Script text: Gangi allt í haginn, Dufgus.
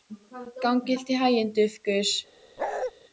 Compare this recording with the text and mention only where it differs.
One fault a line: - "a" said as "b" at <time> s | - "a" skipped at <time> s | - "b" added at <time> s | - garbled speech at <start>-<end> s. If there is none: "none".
none